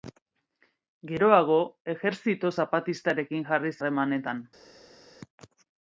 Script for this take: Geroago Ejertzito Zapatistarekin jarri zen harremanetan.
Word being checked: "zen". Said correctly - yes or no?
no